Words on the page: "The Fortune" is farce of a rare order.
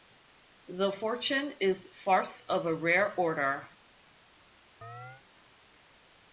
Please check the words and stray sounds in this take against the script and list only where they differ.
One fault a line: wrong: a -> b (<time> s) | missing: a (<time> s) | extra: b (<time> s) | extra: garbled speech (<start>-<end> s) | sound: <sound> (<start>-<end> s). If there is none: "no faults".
sound: chirp (4.8-5.2 s)